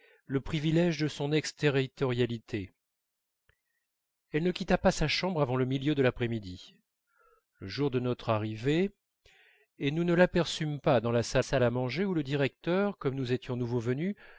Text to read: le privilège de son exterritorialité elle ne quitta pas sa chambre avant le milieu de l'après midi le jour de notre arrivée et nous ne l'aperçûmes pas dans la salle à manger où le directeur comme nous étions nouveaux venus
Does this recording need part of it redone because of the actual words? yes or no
yes